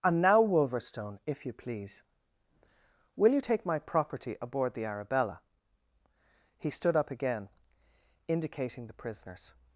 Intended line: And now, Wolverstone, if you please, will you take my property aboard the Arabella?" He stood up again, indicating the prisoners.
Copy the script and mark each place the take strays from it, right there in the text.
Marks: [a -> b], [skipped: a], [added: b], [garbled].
And now, Wolverstone, if you please, will you take my property aboard the Arabella?" He stood up again, indicating the prisoners.